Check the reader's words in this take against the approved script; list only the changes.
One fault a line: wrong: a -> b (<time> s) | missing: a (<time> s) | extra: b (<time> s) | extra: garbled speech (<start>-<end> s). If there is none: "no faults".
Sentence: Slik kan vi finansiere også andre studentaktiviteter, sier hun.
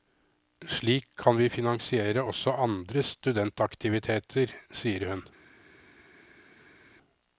no faults